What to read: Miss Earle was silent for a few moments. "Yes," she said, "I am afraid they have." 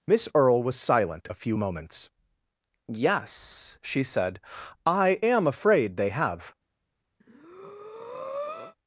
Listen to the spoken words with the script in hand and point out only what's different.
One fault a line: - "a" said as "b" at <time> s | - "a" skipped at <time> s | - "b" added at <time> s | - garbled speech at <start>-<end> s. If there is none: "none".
- "for" skipped at 1.3 s